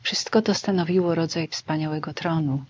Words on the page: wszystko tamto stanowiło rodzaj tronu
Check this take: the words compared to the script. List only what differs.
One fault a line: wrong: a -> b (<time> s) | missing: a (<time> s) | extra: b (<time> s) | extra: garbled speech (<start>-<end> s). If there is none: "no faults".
wrong: tamto -> to (0.4 s)
extra: wspaniałego (1.5 s)